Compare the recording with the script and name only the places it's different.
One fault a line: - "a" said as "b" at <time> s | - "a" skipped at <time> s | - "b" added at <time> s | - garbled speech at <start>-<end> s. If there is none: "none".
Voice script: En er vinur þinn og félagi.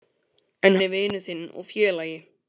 none